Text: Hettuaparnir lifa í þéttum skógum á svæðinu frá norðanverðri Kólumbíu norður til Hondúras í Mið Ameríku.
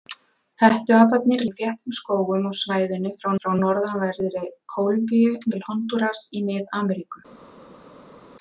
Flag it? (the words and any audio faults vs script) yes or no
yes